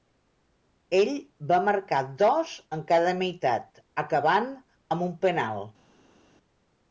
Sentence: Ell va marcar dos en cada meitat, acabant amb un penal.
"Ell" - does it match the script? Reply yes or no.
yes